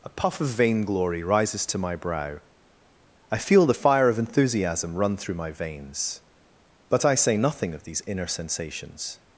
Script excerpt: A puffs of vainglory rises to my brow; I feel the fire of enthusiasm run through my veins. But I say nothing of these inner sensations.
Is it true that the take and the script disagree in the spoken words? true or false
true